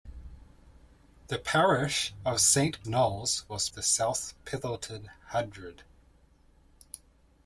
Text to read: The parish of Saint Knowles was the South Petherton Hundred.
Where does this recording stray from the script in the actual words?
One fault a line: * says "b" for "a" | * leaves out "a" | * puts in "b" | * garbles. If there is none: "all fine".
all fine